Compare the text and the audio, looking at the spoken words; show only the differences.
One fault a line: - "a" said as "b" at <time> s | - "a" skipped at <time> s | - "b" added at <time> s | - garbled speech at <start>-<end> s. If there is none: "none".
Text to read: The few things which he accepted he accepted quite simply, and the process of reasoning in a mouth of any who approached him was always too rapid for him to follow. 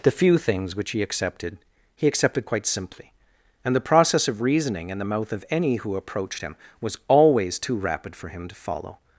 - "a" said as "the" at 5.0 s